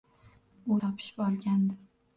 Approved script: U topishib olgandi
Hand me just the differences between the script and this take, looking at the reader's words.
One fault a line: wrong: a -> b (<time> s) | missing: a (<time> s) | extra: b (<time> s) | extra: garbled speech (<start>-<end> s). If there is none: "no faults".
no faults